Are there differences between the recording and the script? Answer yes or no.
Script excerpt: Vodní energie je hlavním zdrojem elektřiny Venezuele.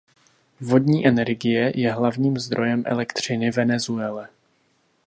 no